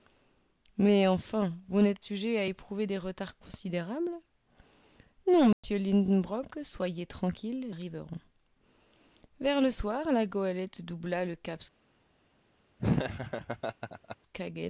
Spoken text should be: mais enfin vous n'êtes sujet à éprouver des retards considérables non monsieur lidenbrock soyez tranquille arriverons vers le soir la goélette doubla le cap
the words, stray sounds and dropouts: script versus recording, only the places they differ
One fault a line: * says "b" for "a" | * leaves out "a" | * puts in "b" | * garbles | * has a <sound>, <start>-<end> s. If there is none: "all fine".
* has a dropout, 5.5-5.6 s
* has a laugh, 12.8-14.2 s